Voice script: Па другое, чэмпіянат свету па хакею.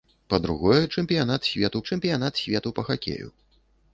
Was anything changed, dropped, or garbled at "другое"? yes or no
no